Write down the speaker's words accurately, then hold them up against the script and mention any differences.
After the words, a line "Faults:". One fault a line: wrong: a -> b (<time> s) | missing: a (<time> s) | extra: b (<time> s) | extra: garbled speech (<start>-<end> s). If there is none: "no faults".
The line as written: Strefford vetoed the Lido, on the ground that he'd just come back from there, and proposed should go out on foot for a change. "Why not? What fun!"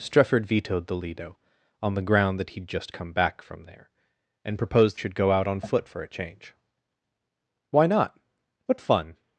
Strefford vetoed the Lido, on the ground that he'd just come back from there, and proposed should go out on foot for a change. "Why not? What fun!"
Faults:
no faults